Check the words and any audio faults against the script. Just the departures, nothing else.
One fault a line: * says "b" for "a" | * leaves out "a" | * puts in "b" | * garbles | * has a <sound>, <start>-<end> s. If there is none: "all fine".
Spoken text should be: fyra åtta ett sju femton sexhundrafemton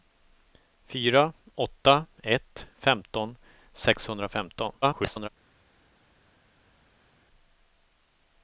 * leaves out "sju"
* garbles